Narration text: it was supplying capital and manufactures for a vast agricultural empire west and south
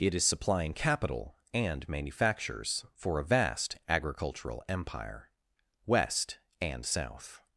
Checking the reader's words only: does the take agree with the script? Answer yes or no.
no